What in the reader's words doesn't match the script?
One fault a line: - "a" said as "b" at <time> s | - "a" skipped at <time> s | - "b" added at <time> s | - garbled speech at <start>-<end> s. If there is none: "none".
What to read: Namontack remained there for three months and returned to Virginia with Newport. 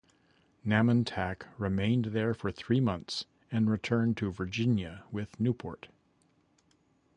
none